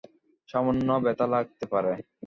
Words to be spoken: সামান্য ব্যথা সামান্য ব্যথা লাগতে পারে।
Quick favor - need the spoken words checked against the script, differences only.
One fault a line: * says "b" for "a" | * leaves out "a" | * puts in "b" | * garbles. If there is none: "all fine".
* leaves out "সামান্য ব্যথা"